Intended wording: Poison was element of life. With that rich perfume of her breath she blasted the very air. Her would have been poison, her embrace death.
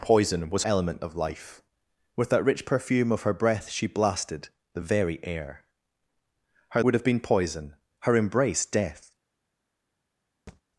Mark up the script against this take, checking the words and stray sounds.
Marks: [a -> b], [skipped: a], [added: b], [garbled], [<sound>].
Poison was element of life. With that rich perfume of her breath she blasted the very air. Her would have been poison, her embrace death. [thud]